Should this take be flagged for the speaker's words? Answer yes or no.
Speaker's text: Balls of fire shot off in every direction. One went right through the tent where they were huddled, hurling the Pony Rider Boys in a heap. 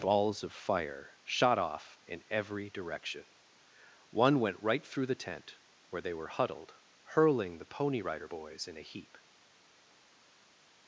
no